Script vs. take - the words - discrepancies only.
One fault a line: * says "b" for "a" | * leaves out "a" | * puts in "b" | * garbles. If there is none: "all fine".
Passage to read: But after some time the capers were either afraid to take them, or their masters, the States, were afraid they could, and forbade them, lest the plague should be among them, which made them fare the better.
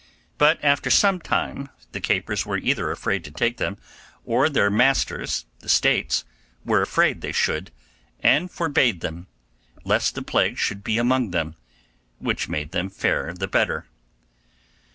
* says "should" for "could"